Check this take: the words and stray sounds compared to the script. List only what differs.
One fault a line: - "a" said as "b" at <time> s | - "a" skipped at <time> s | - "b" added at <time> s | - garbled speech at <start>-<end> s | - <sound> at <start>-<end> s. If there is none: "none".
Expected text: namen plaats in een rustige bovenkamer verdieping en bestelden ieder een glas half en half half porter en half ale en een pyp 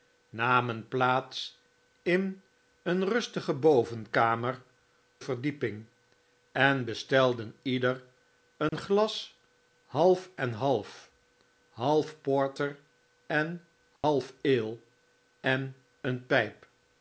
- dropout at 8.7-8.7 s
- dropout at 14.0-14.0 s